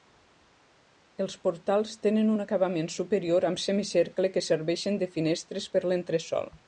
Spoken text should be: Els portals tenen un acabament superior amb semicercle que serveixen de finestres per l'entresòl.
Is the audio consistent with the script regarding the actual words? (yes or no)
yes